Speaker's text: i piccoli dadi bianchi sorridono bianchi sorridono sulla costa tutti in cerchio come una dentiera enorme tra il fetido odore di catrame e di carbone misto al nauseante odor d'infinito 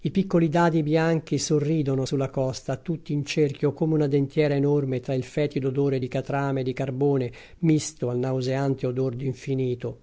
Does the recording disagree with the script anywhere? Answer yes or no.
yes